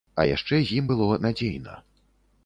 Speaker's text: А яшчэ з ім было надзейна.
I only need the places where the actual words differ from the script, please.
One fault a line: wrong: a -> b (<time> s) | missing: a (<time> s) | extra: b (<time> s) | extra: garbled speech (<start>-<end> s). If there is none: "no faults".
no faults